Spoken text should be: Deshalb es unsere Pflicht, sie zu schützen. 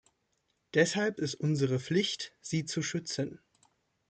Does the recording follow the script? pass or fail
pass